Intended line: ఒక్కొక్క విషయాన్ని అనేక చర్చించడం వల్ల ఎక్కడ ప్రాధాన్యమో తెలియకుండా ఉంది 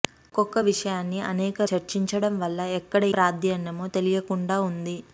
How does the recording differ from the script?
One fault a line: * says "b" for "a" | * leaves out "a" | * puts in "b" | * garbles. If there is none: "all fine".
all fine